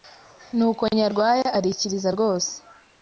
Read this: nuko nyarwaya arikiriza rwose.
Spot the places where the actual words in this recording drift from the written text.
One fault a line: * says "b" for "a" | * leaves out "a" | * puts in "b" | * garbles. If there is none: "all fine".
all fine